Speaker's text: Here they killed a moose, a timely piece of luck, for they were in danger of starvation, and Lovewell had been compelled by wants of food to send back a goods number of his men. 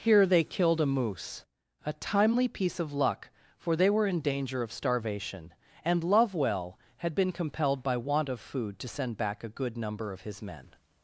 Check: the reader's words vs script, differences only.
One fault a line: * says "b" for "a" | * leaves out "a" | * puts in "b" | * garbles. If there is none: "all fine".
* says "want" for "wants"
* says "good" for "goods"